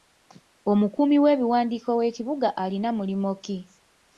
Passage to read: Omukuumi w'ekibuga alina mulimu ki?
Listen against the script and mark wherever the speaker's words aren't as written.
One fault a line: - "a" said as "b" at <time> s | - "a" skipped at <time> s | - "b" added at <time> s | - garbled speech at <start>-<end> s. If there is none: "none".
- "w'ebiwandiiko" added at 1.2 s